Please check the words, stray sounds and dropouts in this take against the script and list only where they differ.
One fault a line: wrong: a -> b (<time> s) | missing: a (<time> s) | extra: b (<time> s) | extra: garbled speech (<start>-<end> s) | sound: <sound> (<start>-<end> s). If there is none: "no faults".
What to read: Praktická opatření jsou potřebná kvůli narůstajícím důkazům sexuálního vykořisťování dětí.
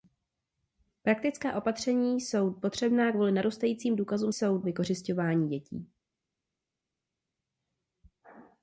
wrong: sexuálního -> jsou (4.3 s)